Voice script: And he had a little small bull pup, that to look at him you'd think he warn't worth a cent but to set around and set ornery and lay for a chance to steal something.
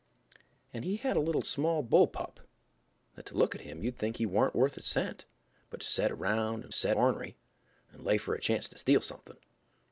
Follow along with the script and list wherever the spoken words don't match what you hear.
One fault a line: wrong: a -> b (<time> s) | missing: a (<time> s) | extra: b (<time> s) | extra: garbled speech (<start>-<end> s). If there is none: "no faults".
no faults